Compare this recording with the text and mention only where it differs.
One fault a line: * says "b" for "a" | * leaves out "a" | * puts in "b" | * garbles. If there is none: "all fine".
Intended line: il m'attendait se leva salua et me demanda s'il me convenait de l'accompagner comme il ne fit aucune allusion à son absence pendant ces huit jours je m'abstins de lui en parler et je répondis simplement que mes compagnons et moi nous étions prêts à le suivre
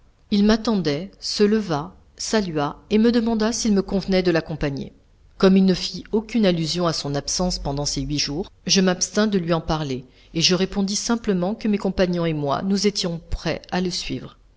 all fine